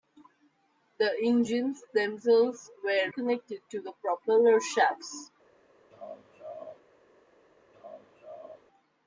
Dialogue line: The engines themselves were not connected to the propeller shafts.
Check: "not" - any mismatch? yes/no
yes